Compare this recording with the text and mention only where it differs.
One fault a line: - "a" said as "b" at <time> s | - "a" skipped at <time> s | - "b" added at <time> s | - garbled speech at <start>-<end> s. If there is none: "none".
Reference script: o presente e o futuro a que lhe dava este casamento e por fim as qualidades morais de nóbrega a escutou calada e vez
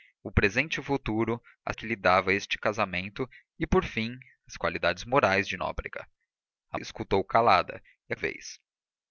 none